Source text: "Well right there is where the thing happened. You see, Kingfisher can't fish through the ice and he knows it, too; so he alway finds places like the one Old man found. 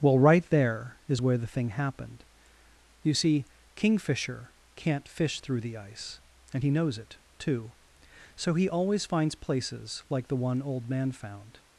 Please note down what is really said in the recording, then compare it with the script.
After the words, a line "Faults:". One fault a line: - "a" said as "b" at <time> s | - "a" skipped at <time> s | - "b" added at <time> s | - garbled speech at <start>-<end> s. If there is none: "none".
"Well right there is where the thing happened. You see, Kingfisher can't fish through the ice and he knows it, too; so he always finds places like the one Old man found.
Faults:
- "alway" said as "always" at 8.7 s